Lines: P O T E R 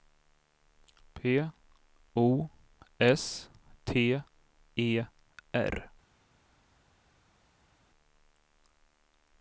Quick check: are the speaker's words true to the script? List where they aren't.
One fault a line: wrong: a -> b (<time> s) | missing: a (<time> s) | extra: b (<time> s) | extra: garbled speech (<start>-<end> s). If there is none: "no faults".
extra: S (3.0 s)